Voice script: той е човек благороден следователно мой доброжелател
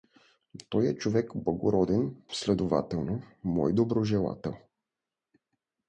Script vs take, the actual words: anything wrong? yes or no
no